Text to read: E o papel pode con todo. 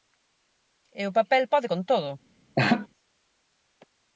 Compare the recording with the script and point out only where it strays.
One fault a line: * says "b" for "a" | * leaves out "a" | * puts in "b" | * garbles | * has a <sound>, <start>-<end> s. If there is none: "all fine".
* has a laugh, 2.6-2.9 s